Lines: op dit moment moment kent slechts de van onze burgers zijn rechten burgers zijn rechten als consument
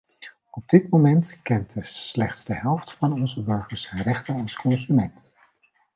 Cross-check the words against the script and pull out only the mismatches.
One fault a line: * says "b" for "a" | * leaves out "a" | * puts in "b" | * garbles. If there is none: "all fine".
* leaves out "moment"
* puts in "helft"
* leaves out "burgers zijn rechten"